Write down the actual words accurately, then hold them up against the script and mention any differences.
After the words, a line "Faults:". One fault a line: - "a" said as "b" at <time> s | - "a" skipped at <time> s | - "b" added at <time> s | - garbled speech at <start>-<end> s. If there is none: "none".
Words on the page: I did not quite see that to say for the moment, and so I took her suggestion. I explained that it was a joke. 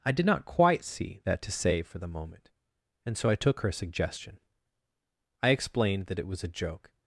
I did not quite see that to say for the moment, and so I took her suggestion. I explained that it was a joke.
Faults:
none